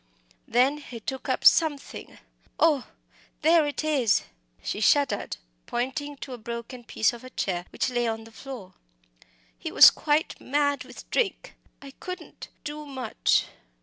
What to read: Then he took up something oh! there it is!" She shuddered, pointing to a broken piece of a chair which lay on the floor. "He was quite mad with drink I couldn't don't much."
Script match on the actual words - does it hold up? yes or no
no